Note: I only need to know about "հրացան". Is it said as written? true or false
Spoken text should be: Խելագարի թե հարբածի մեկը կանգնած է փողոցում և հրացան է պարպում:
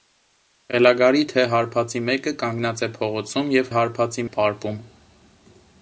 false